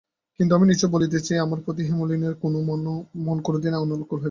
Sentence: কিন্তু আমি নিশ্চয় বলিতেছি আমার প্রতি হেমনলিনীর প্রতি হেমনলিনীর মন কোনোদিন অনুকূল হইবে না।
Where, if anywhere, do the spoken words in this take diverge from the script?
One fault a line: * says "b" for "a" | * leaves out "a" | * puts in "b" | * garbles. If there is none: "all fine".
* leaves out "প্রতি হেমনলিনীর"